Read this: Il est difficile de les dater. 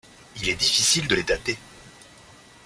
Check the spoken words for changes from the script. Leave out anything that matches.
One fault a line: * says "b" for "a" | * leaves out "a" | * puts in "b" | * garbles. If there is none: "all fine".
all fine